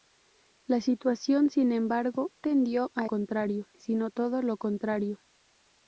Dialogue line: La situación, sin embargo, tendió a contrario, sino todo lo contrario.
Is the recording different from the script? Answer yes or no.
no